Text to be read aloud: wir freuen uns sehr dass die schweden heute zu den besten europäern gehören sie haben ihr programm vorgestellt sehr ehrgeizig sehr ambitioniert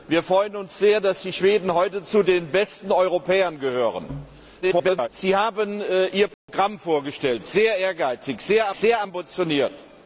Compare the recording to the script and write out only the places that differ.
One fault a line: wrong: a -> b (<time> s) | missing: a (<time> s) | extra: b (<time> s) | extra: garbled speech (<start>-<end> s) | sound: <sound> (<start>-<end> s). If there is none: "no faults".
extra: garbled speech (4.6-5.1 s)
sound: dropout (6.3-6.5 s)
extra: sehr (8.7 s)